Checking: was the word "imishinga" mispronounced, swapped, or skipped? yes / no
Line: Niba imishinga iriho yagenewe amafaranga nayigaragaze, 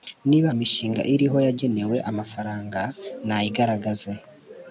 no